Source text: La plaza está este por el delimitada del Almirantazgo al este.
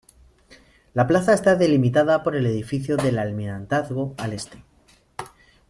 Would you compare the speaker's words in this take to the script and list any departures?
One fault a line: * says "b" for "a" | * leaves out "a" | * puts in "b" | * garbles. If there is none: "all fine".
* says "delimitada" for "este"
* says "edificio" for "delimitada"